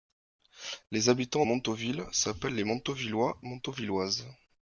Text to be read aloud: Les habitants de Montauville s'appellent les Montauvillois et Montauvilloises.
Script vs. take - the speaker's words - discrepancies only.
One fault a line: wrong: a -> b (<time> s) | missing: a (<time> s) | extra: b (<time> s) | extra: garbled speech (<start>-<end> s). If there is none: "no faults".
missing: de (1.4 s)
missing: et (3.4 s)